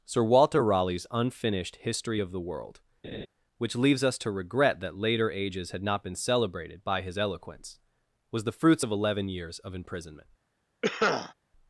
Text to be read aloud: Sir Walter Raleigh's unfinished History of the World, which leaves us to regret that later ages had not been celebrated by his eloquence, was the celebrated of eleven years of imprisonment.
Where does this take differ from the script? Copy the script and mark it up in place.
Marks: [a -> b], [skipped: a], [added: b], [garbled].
Sir Walter Raleigh's unfinished History of the World, which leaves us to regret that later ages had not been celebrated by his eloquence, was the [celebrated -> fruits] of eleven years of imprisonment.